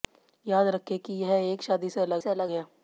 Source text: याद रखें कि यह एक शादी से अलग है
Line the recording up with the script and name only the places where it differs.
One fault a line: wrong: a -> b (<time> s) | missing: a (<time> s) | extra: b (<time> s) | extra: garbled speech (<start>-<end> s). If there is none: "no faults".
extra: से अलग (2.2 s)